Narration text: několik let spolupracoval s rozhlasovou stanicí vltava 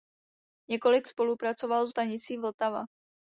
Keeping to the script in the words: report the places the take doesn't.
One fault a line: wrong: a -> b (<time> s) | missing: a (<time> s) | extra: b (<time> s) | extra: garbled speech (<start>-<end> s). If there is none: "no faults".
missing: let (1.1 s)
missing: rozhlasovou (1.9 s)